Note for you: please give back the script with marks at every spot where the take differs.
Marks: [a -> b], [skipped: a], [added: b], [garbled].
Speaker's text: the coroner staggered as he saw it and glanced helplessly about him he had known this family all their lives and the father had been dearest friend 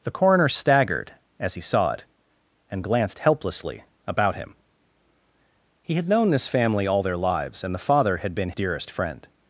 the coroner staggered as he saw it and glanced helplessly about him he had known this family all their lives and the father had been dearest friend